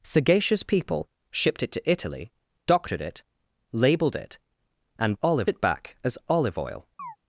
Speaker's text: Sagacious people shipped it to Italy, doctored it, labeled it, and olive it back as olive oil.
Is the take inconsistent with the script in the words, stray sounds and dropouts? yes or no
yes